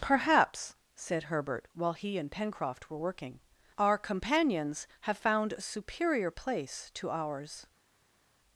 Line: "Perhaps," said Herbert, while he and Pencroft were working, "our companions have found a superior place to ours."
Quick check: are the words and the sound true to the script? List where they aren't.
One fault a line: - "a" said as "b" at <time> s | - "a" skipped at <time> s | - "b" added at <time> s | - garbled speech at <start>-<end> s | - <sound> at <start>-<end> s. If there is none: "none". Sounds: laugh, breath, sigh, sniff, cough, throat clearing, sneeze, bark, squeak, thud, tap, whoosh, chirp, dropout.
none